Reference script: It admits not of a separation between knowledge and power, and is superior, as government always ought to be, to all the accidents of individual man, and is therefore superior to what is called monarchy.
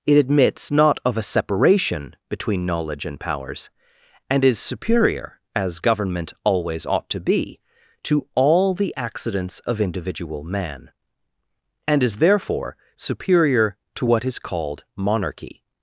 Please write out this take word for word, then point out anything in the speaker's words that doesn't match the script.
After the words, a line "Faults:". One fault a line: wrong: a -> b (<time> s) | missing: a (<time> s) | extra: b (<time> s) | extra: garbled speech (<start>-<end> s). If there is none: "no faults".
It admits not of a separation between knowledge and powers, and is superior, as government always ought to be, to all the accidents of individual man, and is therefore superior to what is called monarchy.
Faults:
wrong: power -> powers (3.2 s)